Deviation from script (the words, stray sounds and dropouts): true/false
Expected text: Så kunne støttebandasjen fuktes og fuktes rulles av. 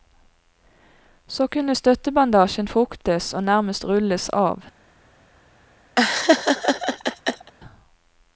true